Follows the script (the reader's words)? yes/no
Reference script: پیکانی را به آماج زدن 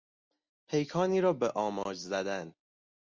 yes